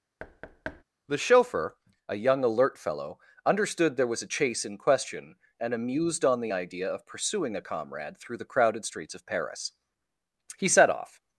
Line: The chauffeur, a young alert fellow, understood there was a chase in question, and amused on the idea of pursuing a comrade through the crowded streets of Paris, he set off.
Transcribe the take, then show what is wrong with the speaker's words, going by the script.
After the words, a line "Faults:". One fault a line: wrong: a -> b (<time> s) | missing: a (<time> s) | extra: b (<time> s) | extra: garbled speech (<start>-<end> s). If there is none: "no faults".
The chauffeur, a young alert fellow, understood there was a chase in question, and amused on the idea of pursuing a comrade through the crowded streets of Paris, he set off.
Faults:
no faults